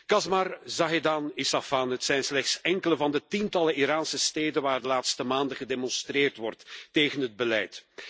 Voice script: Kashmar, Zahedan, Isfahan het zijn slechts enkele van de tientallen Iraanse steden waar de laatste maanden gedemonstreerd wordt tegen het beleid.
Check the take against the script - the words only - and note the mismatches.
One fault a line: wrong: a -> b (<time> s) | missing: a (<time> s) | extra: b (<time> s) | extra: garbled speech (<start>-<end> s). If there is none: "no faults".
no faults